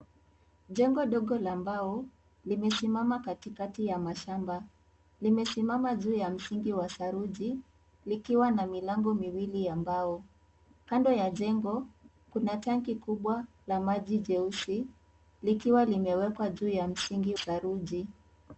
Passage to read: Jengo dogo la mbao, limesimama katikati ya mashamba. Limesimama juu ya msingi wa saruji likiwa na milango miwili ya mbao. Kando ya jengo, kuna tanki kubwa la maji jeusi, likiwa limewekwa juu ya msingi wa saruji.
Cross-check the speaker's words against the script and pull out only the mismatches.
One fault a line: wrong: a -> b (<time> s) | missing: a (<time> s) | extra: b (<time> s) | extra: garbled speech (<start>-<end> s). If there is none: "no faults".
missing: wa (17.4 s)